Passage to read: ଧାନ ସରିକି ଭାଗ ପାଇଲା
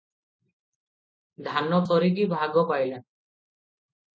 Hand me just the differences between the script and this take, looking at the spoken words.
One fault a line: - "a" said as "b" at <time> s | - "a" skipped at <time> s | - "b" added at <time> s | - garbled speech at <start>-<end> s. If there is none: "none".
none